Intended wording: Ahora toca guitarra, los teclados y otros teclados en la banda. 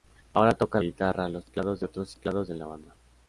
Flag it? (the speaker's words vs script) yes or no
no